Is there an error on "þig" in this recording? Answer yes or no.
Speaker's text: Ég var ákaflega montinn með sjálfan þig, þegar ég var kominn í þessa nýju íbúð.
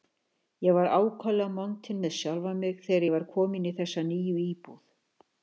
yes